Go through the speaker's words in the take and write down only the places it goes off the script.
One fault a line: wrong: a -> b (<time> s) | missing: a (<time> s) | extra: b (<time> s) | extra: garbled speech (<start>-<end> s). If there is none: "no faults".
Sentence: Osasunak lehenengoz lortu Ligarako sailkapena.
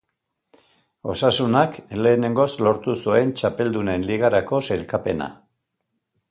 extra: zuen Txapeldunen (3.0 s)